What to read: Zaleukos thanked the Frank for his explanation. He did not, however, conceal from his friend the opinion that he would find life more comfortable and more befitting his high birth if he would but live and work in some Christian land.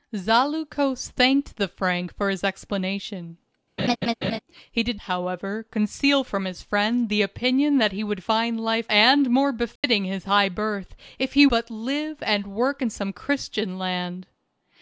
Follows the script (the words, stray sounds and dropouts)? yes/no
no